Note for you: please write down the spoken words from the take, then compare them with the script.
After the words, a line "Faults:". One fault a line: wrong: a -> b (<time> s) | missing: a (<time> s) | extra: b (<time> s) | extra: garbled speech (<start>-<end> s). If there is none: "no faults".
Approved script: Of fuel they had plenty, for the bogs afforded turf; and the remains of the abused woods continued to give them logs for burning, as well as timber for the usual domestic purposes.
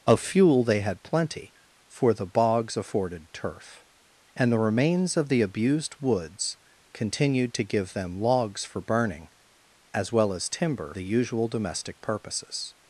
Of fuel they had plenty, for the bogs afforded turf; and the remains of the abused woods continued to give them logs for burning, as well as timber the usual domestic purposes.
Faults:
missing: for (10.9 s)